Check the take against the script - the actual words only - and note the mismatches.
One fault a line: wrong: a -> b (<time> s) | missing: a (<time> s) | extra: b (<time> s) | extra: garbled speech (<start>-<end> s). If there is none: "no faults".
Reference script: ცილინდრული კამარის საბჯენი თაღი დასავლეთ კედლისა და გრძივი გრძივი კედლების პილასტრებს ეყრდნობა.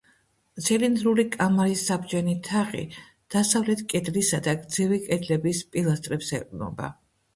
missing: გრძივი (5.0 s)